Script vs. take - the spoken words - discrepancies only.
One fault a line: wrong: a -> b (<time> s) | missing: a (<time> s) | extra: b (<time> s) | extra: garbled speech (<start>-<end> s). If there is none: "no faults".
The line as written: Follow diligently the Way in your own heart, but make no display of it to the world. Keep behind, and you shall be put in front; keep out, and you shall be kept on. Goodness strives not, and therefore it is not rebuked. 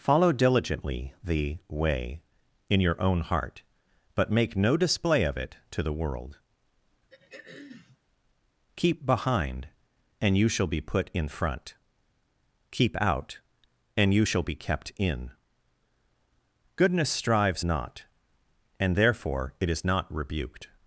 wrong: on -> in (15.0 s)